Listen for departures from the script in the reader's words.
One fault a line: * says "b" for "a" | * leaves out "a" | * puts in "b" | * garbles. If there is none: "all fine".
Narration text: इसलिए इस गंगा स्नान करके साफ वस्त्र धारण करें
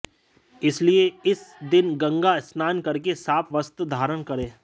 * puts in "दिन"